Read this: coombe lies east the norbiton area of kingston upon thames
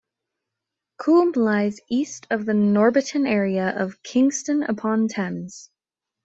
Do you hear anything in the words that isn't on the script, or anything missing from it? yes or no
yes